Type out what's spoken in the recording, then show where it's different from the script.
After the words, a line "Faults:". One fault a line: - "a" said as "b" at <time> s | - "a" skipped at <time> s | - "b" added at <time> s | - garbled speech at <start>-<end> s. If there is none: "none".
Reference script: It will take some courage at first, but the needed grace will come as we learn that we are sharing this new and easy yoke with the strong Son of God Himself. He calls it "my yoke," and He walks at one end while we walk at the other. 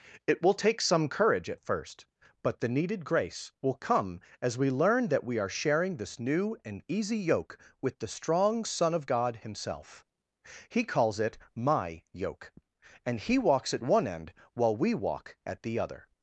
It will take some courage at first, but the needed grace will come as we learn that we are sharing this new and easy yoke with the strong Son of God Himself. He calls it "my yoke," and He walks at one end while we walk at the other.
Faults:
none